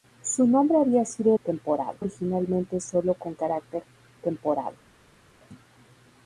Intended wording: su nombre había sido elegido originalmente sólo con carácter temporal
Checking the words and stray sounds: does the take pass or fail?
fail